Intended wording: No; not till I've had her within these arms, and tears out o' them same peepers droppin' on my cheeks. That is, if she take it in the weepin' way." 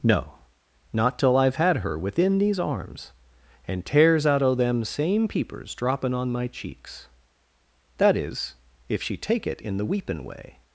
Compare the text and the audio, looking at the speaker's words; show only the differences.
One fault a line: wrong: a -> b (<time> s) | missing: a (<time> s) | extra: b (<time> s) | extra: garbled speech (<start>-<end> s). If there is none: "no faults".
no faults